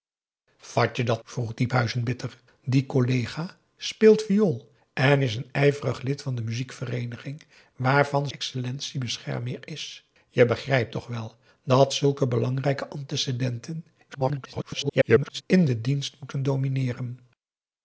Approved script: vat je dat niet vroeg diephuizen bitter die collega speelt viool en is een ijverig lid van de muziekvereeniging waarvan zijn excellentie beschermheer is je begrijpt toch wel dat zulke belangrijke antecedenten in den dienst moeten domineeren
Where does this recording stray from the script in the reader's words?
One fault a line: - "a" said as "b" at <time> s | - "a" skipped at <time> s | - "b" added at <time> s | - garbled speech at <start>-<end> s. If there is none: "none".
- "niet" skipped at 1.2 s
- "zijn" skipped at 8.3 s
- garbled speech at 14.1-15.4 s